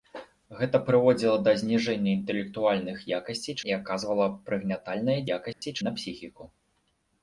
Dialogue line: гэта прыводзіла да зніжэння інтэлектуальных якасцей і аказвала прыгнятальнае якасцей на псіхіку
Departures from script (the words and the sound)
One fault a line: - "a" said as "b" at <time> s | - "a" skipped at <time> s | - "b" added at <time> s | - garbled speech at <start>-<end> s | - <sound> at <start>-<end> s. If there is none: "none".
- dropout at 5.5-5.6 s